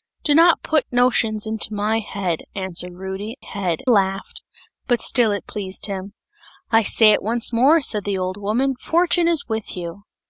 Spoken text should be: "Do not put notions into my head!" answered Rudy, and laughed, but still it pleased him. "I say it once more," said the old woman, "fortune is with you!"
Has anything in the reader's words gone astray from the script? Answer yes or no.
yes